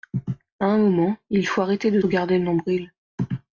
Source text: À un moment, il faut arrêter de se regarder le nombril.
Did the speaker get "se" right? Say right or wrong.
wrong